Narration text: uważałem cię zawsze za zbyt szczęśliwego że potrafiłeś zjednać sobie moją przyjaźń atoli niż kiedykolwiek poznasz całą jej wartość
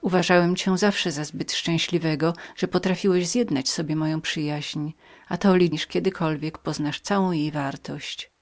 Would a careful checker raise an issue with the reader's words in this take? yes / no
no